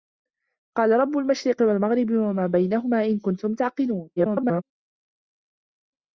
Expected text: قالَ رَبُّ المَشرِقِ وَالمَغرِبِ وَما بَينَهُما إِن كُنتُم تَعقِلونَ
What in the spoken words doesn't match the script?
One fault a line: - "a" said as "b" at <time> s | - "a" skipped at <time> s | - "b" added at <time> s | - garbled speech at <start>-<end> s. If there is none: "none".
- garbled speech at 4.2-4.6 s